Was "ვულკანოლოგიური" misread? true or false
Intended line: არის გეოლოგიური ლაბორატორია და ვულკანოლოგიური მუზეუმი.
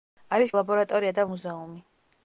true